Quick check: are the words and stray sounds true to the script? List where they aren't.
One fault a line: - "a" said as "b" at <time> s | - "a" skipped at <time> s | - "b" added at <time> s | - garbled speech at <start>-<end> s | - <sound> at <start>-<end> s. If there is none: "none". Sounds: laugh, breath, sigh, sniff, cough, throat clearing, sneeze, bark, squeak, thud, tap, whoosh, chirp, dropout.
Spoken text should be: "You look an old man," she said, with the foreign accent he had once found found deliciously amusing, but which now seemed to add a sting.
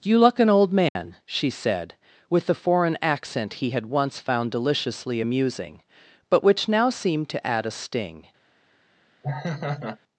- dropout at 0.9-1.0 s
- "found" skipped at 4.5 s
- laugh at 9.2-10.0 s